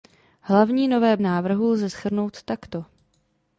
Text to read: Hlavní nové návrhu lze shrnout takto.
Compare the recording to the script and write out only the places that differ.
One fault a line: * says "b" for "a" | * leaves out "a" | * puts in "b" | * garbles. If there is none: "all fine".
all fine